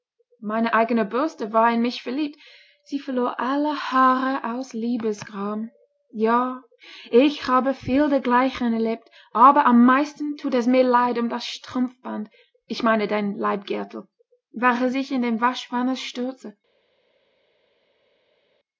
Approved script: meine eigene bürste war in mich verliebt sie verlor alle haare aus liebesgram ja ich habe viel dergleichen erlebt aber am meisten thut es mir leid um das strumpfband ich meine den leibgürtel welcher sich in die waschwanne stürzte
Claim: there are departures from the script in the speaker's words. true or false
false